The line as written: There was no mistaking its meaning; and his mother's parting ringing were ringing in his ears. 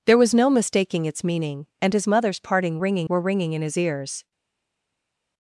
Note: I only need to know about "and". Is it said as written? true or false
true